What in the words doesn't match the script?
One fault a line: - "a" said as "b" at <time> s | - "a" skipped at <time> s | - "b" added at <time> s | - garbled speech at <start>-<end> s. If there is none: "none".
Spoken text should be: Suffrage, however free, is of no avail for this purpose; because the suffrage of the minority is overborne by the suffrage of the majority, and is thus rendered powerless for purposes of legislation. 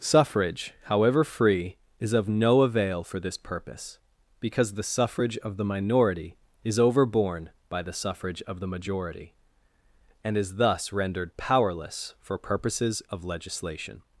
none